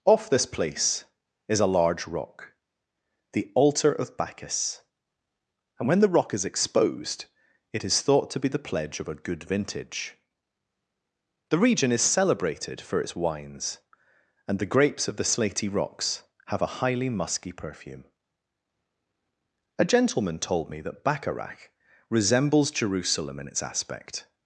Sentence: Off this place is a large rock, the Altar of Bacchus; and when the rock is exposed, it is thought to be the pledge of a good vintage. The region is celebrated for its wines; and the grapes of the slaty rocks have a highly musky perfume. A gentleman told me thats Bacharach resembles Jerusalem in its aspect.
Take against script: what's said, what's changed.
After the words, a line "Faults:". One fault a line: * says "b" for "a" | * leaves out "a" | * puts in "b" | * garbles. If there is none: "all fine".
Off this place is a large rock, the Altar of Bacchus; and when the rock is exposed, it is thought to be the pledge of a good vintage. The region is celebrated for its wines; and the grapes of the slaty rocks have a highly musky perfume. A gentleman told me that Bacharach resembles Jerusalem in its aspect.
Faults:
* says "that" for "thats"